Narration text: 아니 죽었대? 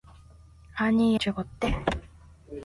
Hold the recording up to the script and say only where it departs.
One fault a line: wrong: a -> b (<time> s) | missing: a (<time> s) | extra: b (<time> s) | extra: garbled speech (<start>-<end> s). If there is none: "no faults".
no faults